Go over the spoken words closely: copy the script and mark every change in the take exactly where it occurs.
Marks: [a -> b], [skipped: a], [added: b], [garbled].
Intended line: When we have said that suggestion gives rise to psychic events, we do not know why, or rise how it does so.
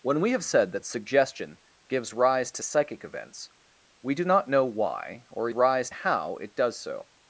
When we have said that suggestion gives rise to psychic events, we do not know why, or rise how it does so.